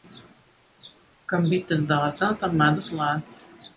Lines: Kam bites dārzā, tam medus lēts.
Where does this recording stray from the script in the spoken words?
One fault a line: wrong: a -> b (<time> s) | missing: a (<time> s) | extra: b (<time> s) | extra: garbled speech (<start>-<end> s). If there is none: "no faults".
no faults